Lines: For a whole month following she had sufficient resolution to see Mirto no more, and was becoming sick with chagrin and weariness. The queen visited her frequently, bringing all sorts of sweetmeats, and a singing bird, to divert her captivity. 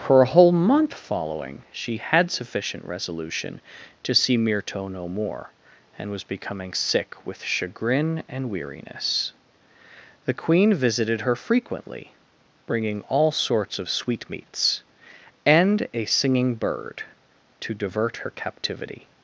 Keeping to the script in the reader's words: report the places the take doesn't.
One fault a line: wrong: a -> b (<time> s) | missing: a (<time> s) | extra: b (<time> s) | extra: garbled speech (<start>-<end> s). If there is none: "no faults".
no faults